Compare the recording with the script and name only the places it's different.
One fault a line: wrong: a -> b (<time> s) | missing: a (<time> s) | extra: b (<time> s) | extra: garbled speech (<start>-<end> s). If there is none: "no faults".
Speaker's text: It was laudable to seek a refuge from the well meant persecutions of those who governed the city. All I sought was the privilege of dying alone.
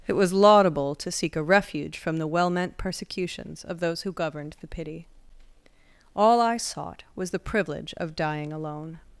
wrong: city -> pity (4.7 s)